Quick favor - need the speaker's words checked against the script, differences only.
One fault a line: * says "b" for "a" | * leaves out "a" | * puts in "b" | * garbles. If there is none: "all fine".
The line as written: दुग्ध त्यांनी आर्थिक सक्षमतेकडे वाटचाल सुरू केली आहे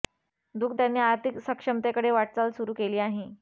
all fine